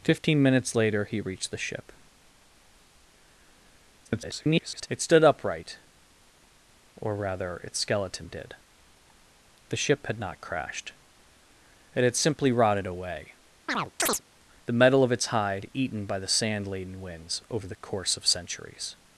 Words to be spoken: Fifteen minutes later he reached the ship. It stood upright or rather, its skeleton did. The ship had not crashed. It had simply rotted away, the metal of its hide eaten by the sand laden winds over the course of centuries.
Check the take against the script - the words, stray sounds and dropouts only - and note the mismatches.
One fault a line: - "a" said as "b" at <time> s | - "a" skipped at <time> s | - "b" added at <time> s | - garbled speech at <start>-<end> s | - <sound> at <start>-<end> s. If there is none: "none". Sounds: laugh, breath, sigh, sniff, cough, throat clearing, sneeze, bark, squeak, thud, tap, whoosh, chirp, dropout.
- garbled speech at 4.1-4.9 s
- chirp at 13.7-14.2 s